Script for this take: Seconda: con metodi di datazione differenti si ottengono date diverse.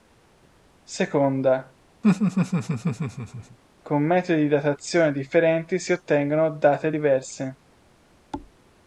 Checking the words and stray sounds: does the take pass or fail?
fail